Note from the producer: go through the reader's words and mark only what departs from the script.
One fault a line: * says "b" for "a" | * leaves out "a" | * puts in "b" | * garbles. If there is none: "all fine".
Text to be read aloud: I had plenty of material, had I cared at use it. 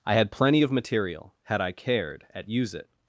all fine